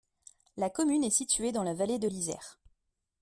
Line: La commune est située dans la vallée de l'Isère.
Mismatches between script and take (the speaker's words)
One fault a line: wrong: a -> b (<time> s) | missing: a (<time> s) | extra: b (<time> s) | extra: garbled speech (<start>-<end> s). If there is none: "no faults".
no faults